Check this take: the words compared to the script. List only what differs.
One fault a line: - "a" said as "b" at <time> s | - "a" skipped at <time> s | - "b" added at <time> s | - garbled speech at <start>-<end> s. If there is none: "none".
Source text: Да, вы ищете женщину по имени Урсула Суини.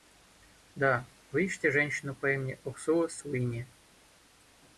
none